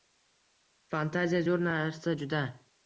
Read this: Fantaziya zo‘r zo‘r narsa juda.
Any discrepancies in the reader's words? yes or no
yes